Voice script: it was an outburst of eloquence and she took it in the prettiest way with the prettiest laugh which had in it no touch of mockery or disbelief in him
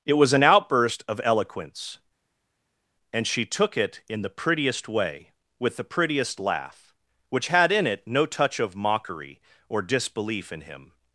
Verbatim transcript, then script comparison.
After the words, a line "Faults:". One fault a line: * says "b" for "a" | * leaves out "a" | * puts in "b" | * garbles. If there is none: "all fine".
it was an outburst of eloquence and she took it in the prettiest way with the prettiest laugh which had in it no touch of mockery or disbelief in him
Faults:
all fine